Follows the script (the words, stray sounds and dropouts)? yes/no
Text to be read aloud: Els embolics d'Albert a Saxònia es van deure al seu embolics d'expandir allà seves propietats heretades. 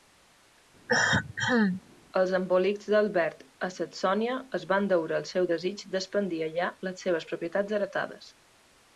no